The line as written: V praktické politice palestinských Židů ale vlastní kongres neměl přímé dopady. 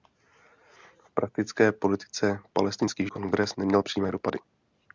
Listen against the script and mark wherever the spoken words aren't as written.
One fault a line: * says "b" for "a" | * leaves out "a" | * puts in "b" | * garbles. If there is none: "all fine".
* leaves out "Židů ale vlastní"